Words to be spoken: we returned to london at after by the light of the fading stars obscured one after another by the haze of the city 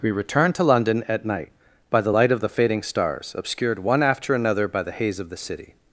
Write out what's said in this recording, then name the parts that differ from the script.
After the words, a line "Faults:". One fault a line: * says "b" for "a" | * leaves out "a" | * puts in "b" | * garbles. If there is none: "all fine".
we returned to london at night by the light of the fading stars obscured one after another by the haze of the city
Faults:
* says "night" for "after"